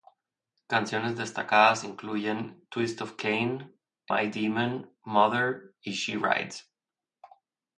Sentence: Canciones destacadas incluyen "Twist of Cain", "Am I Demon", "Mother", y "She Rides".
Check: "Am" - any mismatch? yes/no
yes